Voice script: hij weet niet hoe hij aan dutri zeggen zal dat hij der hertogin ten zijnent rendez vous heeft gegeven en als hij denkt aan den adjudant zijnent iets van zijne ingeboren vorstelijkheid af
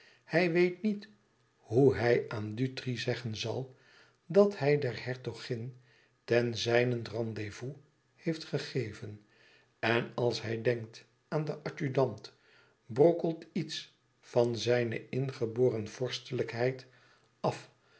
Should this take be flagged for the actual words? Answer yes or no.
yes